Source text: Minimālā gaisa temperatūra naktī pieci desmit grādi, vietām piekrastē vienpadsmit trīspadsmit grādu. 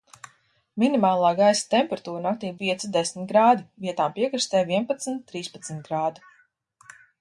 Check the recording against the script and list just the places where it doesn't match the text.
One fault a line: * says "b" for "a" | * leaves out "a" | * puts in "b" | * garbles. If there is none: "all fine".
all fine